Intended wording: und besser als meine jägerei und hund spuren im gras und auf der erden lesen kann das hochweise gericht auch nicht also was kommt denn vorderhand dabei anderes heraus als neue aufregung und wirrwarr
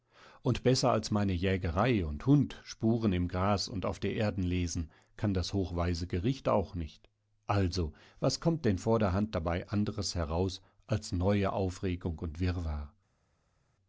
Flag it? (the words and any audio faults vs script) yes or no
no